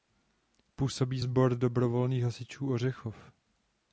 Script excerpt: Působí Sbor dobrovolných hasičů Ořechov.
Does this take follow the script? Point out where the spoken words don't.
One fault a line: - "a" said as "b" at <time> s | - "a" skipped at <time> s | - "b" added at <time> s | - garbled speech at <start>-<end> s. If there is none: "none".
none